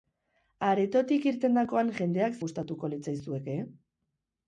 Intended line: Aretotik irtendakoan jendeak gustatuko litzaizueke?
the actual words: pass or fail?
pass